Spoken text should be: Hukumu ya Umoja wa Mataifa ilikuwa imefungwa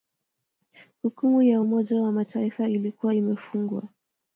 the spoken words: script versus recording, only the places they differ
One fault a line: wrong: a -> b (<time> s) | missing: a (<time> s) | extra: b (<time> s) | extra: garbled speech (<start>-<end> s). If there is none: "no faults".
no faults